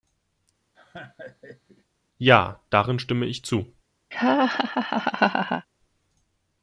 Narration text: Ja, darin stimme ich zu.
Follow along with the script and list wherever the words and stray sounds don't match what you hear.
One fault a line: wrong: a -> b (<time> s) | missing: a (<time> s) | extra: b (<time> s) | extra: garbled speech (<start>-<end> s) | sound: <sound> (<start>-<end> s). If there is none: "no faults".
sound: laugh (0.7-1.8 s)
sound: laugh (4.1-5.7 s)